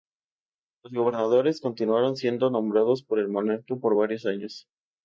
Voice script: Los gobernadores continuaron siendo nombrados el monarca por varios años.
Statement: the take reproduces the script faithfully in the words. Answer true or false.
false